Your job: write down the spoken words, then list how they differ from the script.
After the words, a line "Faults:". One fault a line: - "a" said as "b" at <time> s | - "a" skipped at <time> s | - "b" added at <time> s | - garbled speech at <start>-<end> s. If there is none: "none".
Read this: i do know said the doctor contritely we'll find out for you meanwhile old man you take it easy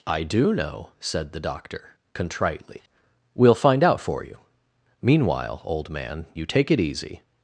i do know said the doctor contritely we'll find out for you meanwhile old man you take it easy
Faults:
none